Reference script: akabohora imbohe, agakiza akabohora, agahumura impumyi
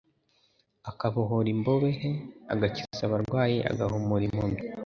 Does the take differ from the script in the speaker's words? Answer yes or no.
yes